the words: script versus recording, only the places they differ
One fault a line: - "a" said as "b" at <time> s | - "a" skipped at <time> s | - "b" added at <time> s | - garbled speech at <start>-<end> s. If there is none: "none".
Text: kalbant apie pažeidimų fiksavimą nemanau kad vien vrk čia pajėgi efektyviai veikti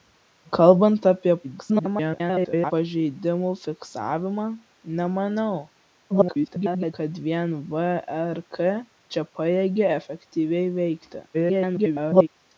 - garbled speech at 1.4-2.7 s
- garbled speech at 6.1-6.9 s
- garbled speech at 11.3-12.3 s